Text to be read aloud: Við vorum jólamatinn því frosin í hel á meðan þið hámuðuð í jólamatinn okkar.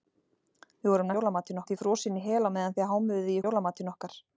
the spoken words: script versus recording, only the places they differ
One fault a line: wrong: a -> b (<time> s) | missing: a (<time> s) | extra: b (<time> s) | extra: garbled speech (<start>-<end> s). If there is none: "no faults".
no faults